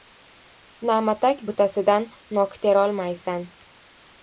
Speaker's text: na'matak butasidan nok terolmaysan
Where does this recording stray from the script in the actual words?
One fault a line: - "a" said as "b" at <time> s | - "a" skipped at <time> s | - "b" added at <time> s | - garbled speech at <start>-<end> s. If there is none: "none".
none